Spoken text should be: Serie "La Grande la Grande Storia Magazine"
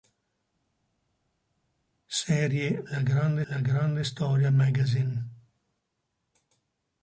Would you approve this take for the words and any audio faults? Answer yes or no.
yes